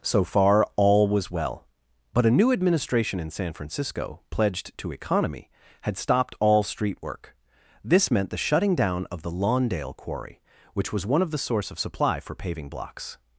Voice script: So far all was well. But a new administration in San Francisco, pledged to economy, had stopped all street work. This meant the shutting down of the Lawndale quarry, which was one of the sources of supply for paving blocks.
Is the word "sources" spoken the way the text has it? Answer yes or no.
no